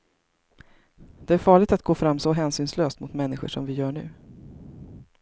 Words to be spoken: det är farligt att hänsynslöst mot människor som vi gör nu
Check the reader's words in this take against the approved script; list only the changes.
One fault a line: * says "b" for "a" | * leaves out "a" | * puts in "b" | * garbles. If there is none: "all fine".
* puts in "gå fram så"